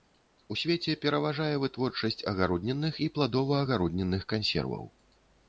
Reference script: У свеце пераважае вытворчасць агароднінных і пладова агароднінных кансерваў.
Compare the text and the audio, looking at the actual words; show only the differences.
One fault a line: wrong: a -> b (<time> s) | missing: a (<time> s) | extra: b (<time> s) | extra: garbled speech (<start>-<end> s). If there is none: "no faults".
no faults